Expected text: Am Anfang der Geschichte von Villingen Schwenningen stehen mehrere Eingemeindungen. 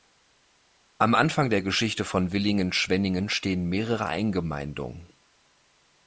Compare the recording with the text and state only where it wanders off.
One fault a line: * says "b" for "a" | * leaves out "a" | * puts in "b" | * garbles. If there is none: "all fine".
all fine